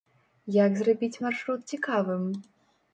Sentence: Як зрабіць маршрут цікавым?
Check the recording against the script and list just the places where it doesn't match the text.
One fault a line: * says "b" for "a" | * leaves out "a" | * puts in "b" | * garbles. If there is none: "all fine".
all fine